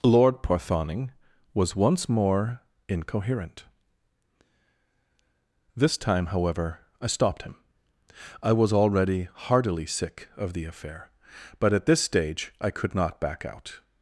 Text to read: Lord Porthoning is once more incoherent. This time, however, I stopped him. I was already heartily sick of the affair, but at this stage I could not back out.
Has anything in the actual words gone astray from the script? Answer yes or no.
yes